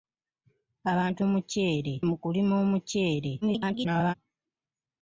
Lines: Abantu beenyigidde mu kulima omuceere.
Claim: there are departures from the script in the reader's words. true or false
true